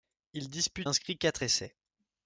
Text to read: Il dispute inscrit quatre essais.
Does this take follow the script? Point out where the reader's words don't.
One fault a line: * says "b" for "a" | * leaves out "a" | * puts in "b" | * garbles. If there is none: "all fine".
all fine